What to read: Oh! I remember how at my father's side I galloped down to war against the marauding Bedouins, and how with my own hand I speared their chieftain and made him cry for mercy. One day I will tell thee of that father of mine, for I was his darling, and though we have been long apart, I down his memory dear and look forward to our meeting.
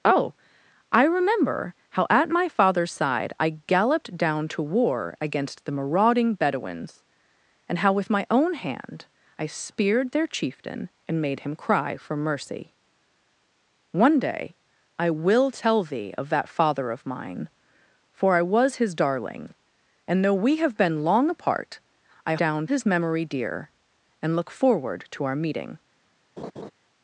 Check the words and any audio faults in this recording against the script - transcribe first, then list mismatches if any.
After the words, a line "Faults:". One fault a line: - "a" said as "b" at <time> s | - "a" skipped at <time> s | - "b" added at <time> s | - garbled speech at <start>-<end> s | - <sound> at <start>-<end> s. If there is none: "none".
Oh! I remember how at my father's side I galloped down to war against the marauding Bedouins, and how with my own hand I speared their chieftain and made him cry for mercy. One day I will tell thee of that father of mine, for I was his darling, and though we have been long apart, I down his memory dear and look forward to our meeting.
Faults:
- laugh at 26.4-26.7 s